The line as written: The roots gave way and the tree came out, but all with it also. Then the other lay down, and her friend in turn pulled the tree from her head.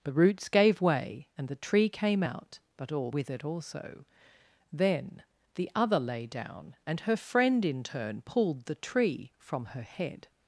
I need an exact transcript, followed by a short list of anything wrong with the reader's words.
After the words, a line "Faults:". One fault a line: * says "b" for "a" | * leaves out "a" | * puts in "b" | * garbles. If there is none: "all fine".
The roots gave way and the tree came out, but all with it also. Then the other lay down, and her friend in turn pulled the tree from her head.
Faults:
all fine